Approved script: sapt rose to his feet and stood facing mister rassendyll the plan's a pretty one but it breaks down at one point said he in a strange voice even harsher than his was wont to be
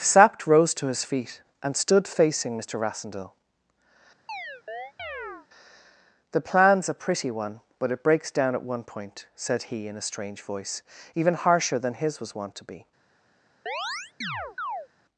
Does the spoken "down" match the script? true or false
true